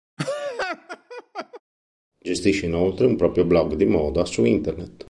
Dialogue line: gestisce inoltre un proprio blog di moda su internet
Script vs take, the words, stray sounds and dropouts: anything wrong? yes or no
yes